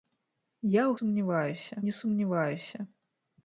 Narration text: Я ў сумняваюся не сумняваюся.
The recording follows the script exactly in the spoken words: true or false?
true